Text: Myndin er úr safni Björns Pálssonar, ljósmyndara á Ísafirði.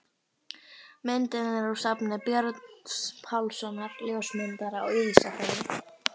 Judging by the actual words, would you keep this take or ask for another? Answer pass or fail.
pass